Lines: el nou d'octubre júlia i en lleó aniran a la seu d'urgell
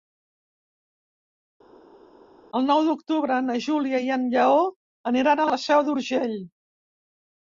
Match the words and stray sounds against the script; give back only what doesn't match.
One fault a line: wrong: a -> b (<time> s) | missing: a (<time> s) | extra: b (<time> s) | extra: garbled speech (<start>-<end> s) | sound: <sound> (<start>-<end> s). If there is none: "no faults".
extra: na (3.5 s)